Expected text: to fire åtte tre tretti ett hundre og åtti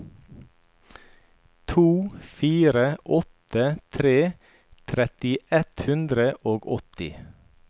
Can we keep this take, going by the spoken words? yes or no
yes